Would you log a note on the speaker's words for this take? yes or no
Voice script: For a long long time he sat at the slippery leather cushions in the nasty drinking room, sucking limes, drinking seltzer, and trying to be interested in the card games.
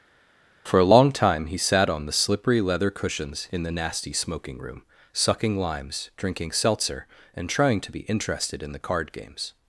yes